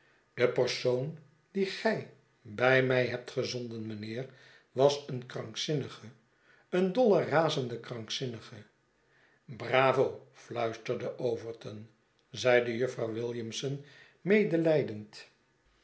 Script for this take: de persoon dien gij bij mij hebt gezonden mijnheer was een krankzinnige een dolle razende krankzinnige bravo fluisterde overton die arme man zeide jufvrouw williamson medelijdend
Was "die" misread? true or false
true